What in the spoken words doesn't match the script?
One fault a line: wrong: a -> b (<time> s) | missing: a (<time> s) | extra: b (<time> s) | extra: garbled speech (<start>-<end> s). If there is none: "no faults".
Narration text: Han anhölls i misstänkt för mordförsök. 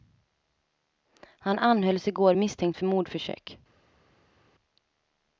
extra: går (2.1 s)